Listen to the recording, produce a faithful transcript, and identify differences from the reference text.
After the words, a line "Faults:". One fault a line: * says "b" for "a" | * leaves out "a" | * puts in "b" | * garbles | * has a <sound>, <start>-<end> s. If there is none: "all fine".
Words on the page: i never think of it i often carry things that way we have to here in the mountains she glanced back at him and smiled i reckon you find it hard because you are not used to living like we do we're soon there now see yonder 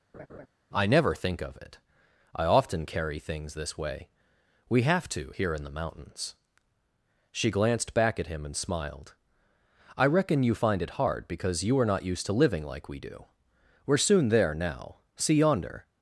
i never think of it i often carry things this way we have to here in the mountains she glanced back at him and smiled i reckon you find it hard because you are not used to living like we do we're soon there now see yonder
Faults:
* has a laugh, 0.1-0.5 s
* says "this" for "that"